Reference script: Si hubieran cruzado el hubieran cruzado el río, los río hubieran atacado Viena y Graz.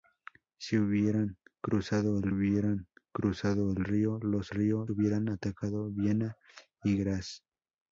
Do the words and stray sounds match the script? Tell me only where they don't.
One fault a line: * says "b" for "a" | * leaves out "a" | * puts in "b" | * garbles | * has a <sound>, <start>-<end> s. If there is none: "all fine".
all fine